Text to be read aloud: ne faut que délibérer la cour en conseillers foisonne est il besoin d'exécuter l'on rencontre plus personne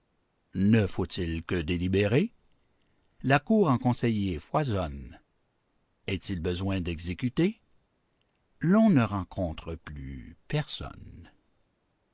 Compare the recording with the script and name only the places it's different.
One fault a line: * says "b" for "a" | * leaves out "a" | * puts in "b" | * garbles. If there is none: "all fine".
* puts in "il"
* puts in "ne"